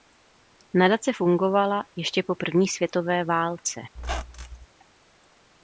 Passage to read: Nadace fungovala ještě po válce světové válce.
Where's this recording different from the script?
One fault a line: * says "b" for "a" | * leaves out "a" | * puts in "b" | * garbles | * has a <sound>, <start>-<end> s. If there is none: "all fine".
* says "první" for "válce"
* has a squeak, 3.9-4.7 s